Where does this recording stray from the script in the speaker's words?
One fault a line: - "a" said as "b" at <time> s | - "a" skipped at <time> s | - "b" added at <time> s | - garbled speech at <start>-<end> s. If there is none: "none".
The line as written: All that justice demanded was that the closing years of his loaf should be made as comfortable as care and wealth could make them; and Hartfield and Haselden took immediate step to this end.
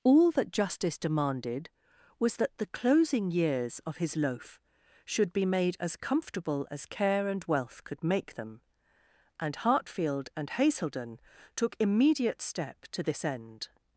none